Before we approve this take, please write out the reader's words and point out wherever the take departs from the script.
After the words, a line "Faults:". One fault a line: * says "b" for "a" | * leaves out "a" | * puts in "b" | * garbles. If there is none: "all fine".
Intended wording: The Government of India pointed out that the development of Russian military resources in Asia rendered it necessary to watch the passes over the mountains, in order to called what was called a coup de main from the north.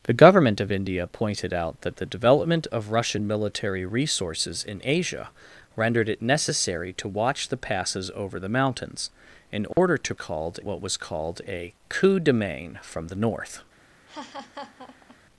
The Government of India pointed out that the development of Russian military resources in Asia rendered it necessary to watch the passes over the mountains, in order to called what was called a coup de main from the north.
Faults:
all fine